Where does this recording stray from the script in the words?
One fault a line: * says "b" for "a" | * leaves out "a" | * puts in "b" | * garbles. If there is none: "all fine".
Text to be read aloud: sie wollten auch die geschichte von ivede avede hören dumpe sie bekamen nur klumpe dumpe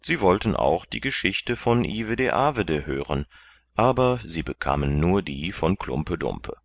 * says "aber" for "dumpe"
* puts in "die von"